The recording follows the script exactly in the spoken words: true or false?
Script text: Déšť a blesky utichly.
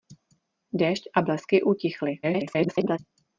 false